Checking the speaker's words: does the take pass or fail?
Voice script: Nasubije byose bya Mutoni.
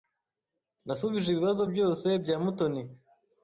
fail